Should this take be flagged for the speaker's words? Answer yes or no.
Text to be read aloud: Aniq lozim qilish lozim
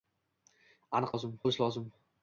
no